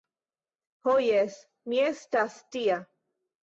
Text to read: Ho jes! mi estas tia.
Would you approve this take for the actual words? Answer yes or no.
yes